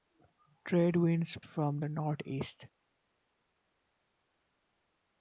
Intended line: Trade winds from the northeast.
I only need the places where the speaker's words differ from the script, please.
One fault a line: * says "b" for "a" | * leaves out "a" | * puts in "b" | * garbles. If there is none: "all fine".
all fine